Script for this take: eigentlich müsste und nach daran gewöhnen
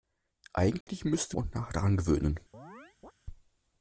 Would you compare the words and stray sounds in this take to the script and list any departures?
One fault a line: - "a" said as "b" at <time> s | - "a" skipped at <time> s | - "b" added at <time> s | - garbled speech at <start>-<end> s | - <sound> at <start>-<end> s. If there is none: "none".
- dropout at 0.8-0.9 s
- chirp at 2.5-3.1 s